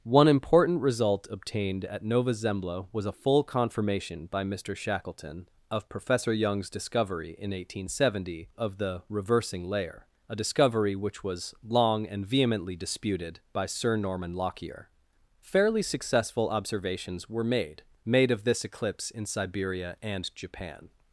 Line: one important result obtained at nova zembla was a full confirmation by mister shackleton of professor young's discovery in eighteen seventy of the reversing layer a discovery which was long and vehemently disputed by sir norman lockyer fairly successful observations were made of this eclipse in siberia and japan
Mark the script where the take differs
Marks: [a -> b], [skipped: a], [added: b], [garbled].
one important result obtained at nova zembla was a full confirmation by mister shackleton of professor young's discovery in eighteen seventy of the reversing layer a discovery which was long and vehemently disputed by sir norman lockyer fairly successful observations were made [added: made] of this eclipse in siberia and japan